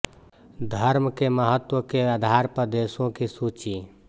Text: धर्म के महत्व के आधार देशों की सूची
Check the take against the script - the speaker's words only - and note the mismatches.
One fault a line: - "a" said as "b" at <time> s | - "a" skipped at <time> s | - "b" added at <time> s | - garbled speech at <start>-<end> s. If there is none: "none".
- "पर" added at 2.5 s